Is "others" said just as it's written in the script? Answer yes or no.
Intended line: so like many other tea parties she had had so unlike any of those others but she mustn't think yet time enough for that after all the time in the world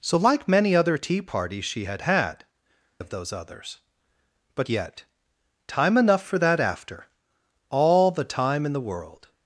yes